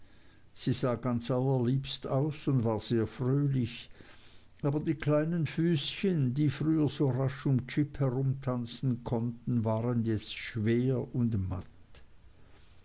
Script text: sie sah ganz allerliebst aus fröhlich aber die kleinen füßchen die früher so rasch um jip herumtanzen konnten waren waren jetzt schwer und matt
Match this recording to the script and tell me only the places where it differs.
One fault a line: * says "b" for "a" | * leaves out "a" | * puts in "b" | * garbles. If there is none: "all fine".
* puts in "und war sehr"
* leaves out "waren"